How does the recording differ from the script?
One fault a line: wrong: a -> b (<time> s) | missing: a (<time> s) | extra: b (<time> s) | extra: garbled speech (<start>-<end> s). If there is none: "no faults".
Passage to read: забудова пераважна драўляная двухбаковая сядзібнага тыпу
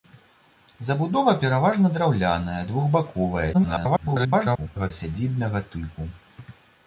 extra: garbled speech (3.5-4.9 s)